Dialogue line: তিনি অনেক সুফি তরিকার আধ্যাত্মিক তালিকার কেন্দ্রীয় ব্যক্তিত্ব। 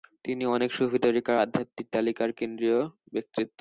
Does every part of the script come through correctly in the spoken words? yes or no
yes